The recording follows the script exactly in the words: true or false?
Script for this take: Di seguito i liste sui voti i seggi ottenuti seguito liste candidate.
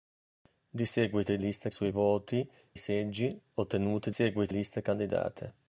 true